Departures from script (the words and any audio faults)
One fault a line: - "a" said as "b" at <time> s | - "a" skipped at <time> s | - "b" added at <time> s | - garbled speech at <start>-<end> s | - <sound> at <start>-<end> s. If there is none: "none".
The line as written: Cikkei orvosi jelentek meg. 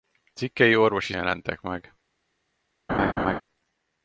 - laugh at 2.9-3.4 s